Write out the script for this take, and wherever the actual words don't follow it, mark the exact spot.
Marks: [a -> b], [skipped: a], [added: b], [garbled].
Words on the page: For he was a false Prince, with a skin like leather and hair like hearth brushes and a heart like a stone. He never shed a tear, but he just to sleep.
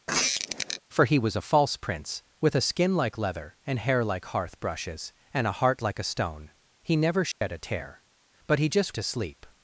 For he was a false Prince, with a skin like leather and hair like hearth brushes and a heart like a stone. He never shed a tear, but he just to sleep.